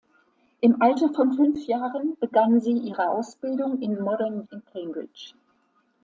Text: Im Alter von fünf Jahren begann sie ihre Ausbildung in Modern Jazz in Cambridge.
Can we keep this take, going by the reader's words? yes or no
no